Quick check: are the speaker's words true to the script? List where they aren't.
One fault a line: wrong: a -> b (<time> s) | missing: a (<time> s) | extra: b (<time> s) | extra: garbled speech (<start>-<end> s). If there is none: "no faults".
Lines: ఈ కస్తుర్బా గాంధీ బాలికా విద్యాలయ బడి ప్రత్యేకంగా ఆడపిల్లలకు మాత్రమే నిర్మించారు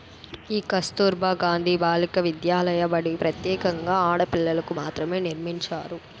no faults